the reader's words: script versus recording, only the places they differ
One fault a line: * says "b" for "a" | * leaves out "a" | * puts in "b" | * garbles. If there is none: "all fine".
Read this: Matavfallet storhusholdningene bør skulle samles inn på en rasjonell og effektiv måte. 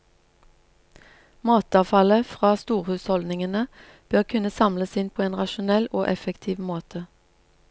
* puts in "fra"
* says "kunne" for "skulle"